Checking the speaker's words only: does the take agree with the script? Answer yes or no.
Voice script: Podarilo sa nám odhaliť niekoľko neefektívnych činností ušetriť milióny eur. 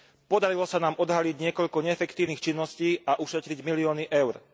no